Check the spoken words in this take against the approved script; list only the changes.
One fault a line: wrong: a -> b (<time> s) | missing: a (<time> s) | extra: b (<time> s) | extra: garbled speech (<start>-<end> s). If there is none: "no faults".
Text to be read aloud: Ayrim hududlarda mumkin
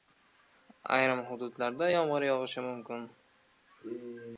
extra: yomg‘ir yog‘ishi (1.9 s)